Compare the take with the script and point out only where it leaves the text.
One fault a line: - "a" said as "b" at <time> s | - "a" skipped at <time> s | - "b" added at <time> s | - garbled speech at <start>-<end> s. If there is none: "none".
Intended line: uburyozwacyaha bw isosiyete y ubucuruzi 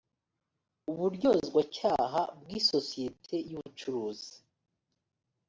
none